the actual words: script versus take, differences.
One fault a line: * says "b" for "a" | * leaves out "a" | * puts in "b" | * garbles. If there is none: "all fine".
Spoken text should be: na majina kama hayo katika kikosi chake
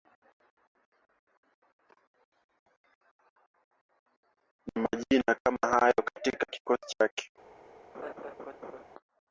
all fine